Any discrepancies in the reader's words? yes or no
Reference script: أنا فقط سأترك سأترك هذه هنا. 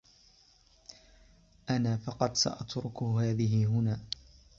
yes